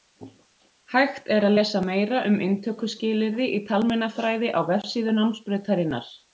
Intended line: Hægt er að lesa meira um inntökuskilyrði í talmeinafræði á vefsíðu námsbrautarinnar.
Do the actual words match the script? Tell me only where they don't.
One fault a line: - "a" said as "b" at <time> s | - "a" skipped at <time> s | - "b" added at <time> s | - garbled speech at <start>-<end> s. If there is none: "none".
none